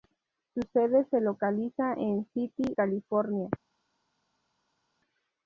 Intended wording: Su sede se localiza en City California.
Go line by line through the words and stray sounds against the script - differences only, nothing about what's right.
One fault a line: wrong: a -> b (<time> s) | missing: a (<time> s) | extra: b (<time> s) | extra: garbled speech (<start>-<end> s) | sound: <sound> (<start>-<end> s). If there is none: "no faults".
no faults